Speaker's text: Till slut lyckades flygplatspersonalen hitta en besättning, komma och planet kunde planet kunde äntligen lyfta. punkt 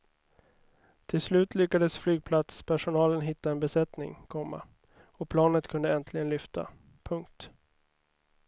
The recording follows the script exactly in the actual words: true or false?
false